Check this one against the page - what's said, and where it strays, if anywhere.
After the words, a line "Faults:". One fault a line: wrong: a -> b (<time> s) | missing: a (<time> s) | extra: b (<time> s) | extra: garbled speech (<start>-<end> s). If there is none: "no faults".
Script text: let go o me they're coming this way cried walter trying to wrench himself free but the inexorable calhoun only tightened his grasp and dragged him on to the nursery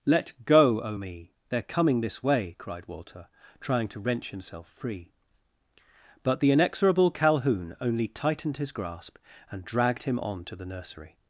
let go o me they're coming this way cried walter trying to wrench himself free but the inexorable calhoun only tightened his grasp and dragged him on to the nursery
Faults:
no faults